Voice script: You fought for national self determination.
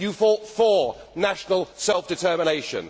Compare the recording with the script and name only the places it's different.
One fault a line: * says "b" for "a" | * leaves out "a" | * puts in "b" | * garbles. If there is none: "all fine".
all fine